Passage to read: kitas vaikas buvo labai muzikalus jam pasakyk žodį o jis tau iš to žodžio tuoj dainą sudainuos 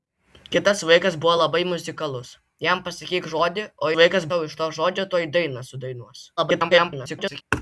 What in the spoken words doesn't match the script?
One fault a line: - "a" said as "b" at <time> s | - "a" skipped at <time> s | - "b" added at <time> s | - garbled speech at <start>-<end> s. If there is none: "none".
- "jis" said as "vaikas" at 4.0 s
- garbled speech at 6.4-7.4 s